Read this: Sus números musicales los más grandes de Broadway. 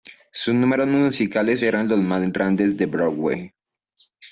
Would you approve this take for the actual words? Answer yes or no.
no